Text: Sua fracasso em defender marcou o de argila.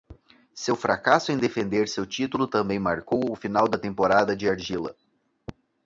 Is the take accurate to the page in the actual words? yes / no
no